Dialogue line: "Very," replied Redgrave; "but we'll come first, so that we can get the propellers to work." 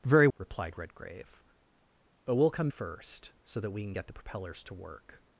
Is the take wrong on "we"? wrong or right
right